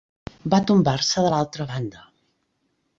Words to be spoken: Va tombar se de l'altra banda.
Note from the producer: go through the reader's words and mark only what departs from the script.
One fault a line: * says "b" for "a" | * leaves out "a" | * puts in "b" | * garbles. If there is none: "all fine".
all fine